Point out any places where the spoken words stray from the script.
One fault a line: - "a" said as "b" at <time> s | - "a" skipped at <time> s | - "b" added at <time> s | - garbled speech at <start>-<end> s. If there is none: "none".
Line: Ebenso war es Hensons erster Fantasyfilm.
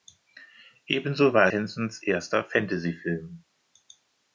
- "es" skipped at 1.5 s